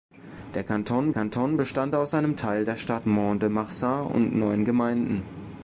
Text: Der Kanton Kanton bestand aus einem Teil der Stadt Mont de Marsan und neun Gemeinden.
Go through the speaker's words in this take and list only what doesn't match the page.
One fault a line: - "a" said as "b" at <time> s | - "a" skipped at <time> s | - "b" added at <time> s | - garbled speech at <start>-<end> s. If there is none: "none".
none